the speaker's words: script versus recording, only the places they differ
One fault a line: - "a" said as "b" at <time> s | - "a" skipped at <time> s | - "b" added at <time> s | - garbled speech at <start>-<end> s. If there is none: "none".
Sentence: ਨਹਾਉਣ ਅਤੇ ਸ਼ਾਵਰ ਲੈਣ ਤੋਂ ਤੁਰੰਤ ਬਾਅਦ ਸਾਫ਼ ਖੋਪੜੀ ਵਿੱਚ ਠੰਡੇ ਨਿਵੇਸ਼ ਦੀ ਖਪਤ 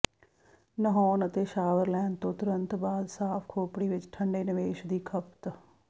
none